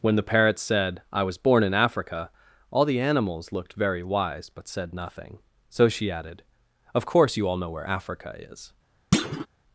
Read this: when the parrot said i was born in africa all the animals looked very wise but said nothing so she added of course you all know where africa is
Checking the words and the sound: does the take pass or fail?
fail